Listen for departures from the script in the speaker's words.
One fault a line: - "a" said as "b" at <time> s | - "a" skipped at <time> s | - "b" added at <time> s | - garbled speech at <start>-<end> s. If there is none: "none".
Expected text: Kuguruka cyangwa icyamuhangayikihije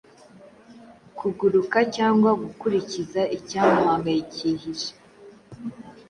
- "gukurikiza" added at 2.4 s